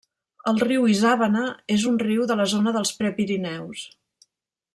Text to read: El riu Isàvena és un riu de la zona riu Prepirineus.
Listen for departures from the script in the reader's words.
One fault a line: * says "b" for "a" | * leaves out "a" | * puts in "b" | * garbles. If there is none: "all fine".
* says "dels" for "riu"